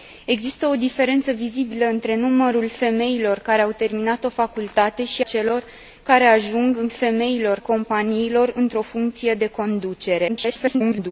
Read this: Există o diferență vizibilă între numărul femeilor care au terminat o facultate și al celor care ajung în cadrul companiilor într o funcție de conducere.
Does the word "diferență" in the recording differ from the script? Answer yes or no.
no